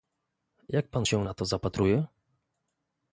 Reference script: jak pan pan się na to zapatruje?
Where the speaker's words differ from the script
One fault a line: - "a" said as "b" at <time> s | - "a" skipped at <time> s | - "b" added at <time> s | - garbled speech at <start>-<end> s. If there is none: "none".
- "pan" skipped at 1.1 s